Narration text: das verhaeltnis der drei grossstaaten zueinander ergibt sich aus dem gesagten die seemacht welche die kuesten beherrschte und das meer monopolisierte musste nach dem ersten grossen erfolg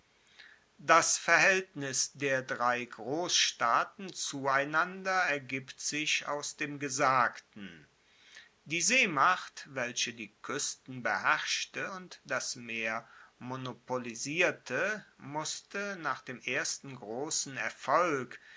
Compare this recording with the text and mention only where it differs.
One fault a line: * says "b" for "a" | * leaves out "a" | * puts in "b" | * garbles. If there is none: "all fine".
all fine